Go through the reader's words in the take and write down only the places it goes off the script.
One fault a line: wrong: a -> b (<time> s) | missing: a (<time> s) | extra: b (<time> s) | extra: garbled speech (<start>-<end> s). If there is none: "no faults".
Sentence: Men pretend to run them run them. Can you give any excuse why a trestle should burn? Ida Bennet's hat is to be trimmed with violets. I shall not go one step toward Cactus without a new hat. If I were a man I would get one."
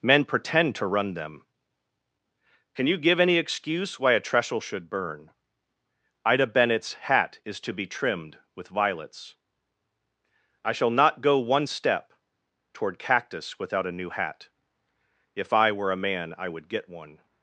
missing: run them (1.4 s)